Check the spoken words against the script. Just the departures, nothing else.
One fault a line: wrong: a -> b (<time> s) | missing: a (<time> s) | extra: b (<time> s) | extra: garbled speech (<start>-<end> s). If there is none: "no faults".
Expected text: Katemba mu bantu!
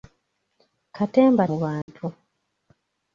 no faults